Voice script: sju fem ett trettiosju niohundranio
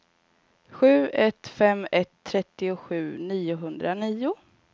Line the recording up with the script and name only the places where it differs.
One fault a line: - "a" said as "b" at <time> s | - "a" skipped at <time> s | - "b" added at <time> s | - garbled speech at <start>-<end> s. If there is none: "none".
- "ett" added at 1.1 s